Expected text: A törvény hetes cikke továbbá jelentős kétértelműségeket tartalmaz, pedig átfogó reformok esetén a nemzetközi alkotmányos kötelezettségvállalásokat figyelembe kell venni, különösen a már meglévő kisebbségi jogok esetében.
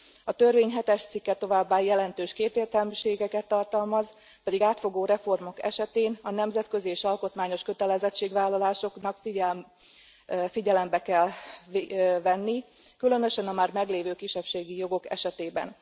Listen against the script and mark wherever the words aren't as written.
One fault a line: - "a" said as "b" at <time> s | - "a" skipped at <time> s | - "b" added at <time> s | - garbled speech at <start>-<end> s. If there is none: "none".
- "és" added at 6.9 s